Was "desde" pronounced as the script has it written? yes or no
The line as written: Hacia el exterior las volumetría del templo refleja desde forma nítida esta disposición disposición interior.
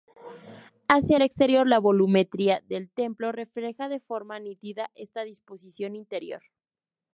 no